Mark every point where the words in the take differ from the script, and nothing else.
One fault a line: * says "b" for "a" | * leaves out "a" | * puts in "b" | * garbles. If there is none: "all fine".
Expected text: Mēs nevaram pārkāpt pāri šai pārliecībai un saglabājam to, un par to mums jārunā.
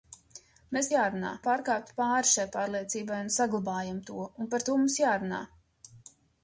* says "jārunā" for "nevaram"